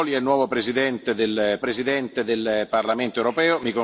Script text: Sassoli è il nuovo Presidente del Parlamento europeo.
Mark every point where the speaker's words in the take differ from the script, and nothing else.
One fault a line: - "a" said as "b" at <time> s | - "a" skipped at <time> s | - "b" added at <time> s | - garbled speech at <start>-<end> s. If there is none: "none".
- "Presidente del" added at 1.6 s